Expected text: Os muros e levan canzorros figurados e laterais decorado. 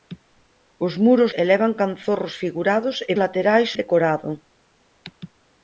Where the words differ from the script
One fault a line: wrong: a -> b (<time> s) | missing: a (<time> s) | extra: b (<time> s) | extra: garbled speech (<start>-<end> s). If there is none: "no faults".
no faults